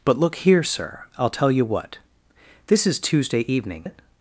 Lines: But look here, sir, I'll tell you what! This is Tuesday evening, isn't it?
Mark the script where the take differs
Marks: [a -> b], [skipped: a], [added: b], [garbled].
But look here, sir, I'll tell you what! This is Tuesday evening, [skipped: isn't] it?